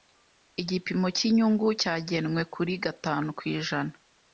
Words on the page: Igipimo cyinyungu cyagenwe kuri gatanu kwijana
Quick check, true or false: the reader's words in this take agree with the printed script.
true